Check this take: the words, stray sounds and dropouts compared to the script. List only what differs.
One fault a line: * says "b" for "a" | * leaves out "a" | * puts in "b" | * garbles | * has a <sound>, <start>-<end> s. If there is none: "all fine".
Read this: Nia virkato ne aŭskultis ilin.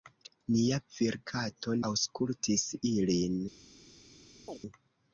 * leaves out "ne"
* has a chirp, 4.5-4.6 s